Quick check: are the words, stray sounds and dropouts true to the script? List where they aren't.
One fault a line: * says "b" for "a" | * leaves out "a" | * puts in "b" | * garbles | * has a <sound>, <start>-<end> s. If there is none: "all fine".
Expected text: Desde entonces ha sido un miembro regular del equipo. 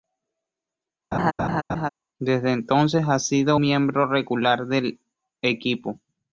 * has a laugh, 1.1-1.9 s
* leaves out "un"